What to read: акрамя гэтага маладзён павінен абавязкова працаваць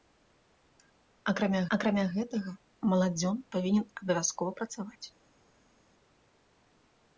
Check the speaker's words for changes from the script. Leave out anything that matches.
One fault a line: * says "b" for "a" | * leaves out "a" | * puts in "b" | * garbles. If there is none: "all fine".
* puts in "акрамя"